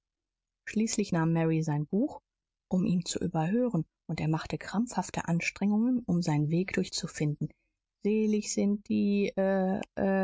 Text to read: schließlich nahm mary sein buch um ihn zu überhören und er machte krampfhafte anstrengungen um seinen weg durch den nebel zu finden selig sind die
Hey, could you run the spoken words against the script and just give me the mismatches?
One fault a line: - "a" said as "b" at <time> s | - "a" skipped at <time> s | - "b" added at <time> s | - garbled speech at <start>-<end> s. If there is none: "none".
- "den nebel" skipped at 6.9 s